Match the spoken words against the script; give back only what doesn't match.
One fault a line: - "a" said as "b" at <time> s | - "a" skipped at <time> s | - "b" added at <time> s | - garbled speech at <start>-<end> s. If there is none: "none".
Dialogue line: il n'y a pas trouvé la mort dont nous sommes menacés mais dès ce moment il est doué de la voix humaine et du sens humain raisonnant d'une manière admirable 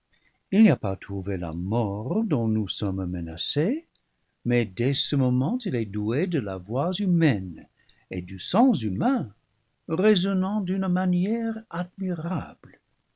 none